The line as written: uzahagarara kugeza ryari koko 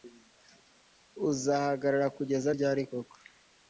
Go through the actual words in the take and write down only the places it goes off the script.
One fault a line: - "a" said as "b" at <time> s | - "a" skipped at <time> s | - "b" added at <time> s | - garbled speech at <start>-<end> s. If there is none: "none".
none